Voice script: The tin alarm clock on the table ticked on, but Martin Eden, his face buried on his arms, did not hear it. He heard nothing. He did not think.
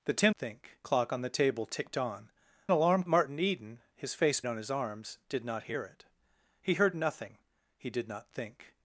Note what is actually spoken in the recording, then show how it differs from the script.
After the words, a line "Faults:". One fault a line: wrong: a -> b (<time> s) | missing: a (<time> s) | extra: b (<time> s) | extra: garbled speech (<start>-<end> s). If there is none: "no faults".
The tin think clock on the table ticked on, alarm Martin Eden, his face on his arms, did not hear it. He heard nothing. He did not think.
Faults:
wrong: alarm -> think (0.4 s)
wrong: but -> alarm (2.7 s)
missing: buried (4.4 s)